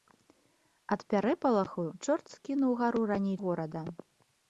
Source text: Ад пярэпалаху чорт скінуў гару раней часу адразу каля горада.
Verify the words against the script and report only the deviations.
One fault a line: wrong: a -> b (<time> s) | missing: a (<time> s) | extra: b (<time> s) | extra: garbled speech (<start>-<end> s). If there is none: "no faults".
missing: часу адразу каля (3.4 s)